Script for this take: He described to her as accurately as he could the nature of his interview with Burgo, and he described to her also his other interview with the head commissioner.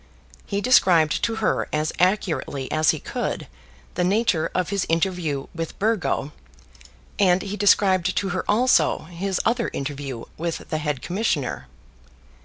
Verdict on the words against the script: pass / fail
pass